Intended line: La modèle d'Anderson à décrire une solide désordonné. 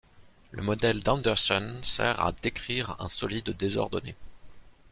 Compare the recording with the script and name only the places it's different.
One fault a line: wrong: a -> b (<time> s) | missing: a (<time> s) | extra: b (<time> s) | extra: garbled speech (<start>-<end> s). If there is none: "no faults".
wrong: La -> Le (0.5 s)
extra: sert (1.8 s)
wrong: une -> un (3.0 s)